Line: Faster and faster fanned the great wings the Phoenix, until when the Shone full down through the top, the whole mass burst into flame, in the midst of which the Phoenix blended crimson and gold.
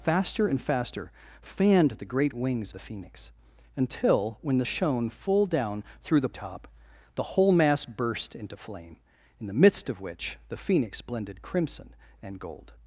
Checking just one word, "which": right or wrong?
right